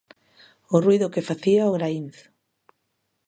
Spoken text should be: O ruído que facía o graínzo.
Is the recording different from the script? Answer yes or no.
no